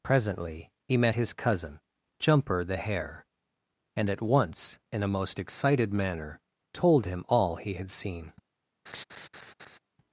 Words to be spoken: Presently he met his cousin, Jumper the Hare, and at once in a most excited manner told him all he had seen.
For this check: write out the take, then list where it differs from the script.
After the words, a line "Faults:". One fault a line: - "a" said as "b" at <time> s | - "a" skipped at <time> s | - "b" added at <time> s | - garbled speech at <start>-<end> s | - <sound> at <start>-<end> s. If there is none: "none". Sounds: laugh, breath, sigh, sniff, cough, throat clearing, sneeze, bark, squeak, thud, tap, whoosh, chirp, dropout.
Presently he met his cousin, Jumper the Hare, and at once in a most excited manner told him all he had seen.
Faults:
- laugh at 8.9-9.8 s